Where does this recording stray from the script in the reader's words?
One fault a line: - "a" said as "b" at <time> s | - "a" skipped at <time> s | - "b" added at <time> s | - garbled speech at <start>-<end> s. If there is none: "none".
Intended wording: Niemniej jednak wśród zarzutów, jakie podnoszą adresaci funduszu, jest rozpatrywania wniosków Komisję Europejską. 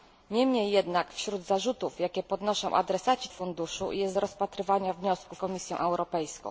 none